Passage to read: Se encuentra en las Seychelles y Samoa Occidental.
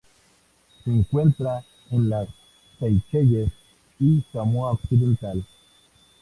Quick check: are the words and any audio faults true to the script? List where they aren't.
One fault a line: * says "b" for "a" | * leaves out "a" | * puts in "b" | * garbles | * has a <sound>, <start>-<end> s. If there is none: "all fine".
all fine